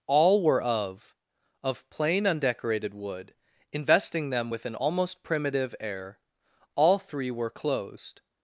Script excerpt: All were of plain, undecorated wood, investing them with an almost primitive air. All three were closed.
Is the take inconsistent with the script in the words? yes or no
yes